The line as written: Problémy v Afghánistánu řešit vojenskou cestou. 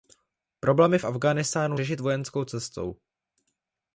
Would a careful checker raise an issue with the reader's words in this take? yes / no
no